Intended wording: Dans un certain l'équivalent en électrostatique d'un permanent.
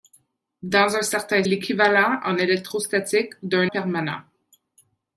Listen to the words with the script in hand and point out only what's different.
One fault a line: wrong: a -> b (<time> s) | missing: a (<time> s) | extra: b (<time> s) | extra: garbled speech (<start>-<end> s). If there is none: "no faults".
no faults